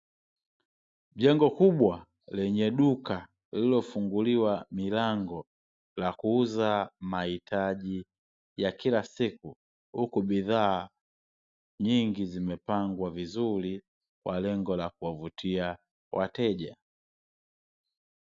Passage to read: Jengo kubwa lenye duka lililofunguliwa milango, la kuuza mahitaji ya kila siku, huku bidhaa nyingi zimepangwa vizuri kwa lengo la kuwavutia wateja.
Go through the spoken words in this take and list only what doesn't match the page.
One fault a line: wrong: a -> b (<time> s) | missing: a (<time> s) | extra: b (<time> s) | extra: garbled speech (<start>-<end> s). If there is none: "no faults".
no faults